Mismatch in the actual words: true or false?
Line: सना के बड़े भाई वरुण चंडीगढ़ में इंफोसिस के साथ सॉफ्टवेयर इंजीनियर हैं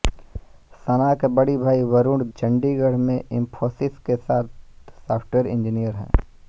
false